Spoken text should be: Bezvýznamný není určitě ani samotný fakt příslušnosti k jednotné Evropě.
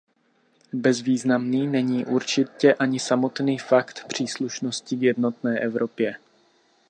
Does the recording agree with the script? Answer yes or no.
yes